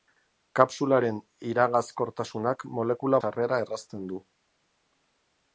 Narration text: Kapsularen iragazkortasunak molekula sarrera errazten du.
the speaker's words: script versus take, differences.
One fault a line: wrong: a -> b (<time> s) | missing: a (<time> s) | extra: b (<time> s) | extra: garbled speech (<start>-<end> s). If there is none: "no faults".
no faults